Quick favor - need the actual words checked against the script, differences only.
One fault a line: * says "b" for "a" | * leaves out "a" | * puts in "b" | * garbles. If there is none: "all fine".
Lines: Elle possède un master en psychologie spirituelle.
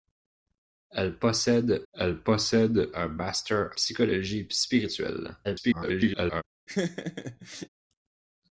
* puts in "elle possède"
* leaves out "en"
* garbles